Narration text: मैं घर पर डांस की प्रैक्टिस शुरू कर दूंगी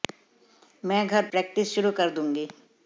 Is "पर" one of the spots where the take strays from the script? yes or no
yes